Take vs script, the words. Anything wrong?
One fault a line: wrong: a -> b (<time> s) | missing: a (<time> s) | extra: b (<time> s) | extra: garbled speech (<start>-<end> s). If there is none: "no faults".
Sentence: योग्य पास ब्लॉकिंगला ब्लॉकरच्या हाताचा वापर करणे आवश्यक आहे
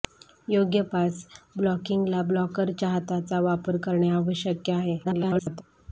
extra: garbled speech (5.0-5.6 s)